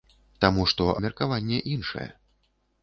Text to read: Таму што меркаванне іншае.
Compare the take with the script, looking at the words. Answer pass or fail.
pass